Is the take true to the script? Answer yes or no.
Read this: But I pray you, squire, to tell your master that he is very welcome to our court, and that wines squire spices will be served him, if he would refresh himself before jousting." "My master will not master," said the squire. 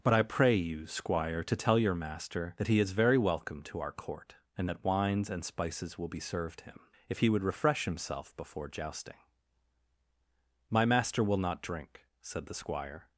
no